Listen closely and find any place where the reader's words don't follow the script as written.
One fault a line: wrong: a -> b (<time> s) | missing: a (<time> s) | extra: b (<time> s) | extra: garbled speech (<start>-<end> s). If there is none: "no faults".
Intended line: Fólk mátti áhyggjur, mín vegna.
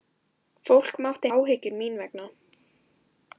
no faults